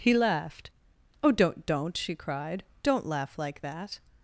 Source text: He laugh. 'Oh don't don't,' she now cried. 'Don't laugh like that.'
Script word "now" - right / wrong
wrong